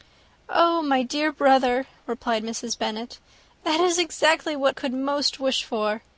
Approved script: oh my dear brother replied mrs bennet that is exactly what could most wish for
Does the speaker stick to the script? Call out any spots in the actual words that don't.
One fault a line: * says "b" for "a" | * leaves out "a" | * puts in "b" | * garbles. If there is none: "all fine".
all fine